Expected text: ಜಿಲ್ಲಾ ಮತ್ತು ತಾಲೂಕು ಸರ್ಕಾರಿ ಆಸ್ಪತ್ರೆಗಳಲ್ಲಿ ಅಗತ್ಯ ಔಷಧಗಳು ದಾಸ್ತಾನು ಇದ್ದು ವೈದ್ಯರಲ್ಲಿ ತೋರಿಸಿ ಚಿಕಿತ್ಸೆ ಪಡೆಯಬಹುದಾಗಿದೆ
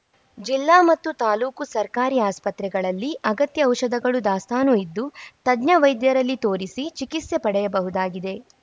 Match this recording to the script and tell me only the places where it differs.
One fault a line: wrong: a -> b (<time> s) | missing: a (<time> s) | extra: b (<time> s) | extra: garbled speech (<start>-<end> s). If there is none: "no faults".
extra: ತಜ್ಞ (5.5 s)